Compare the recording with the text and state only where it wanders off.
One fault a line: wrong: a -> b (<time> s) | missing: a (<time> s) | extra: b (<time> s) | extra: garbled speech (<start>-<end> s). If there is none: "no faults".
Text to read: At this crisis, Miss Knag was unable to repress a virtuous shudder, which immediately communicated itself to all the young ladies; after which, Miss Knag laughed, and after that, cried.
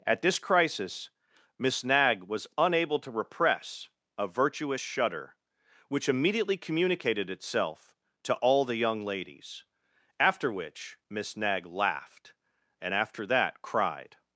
no faults